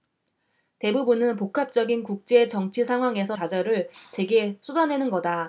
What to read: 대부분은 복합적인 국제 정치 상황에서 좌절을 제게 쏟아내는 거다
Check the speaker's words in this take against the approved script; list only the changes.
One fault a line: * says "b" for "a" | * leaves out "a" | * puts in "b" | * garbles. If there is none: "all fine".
all fine